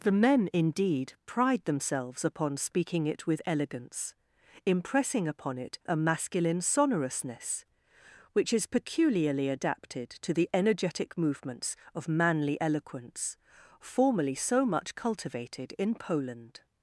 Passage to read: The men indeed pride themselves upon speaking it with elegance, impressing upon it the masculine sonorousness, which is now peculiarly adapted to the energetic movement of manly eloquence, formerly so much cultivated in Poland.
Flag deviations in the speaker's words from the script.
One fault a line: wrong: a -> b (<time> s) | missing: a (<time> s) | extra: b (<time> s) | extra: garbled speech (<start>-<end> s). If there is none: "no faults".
wrong: the -> a (5.8 s)
missing: now (8.7 s)
wrong: movement -> movements (11.2 s)